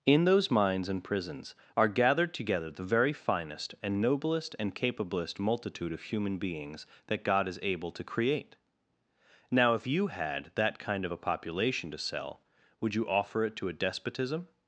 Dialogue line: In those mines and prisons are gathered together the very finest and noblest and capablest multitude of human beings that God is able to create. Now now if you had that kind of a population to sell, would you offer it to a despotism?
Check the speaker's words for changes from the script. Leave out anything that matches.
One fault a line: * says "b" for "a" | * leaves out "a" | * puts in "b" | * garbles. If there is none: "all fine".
* leaves out "now"